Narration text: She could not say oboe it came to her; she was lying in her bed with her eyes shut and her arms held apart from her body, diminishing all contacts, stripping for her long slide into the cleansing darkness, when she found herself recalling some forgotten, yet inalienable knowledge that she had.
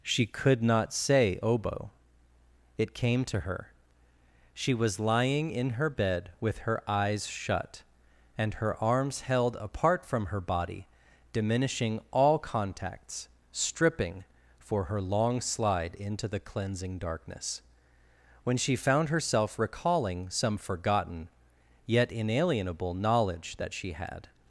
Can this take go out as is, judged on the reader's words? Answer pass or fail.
pass